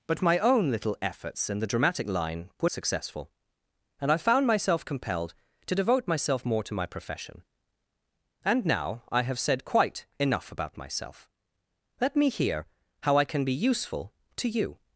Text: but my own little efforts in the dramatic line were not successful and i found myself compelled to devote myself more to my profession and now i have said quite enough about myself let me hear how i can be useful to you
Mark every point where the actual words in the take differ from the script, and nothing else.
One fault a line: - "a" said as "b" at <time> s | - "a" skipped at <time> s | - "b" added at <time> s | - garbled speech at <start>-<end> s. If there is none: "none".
- "not" skipped at 2.7 s